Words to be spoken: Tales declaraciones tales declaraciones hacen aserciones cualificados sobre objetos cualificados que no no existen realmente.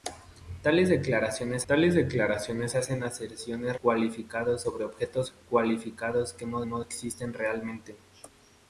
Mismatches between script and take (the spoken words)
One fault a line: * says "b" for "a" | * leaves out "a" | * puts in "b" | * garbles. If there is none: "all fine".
all fine